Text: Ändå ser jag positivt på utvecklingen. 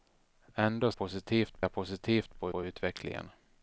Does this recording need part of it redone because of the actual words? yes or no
yes